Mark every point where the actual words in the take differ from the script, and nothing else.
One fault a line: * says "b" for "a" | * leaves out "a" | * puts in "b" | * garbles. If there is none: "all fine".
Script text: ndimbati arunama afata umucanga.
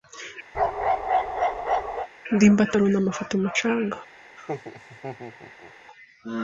all fine